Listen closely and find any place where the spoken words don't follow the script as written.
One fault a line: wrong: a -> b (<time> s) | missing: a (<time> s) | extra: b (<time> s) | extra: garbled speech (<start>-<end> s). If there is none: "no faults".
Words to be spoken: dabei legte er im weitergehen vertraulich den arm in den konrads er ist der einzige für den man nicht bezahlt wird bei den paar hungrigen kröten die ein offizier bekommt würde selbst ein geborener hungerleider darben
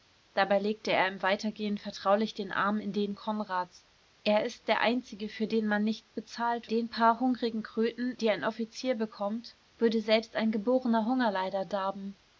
missing: wird bei (6.7 s)